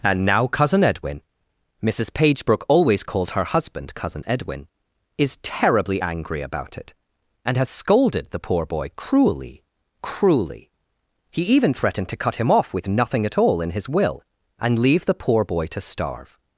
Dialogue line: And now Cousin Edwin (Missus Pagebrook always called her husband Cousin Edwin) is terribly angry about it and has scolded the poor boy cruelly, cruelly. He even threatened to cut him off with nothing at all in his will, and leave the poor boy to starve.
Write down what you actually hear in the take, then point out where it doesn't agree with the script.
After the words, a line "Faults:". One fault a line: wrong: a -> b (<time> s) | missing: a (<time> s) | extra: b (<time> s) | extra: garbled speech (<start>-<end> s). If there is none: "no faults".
And now Cousin Edwin (Missus Pagebrook always called her husband Cousin Edwin) is terribly angry about it and has scolded the poor boy cruelly, cruelly. He even threatened to cut him off with nothing at all in his will, and leave the poor boy to starve.
Faults:
no faults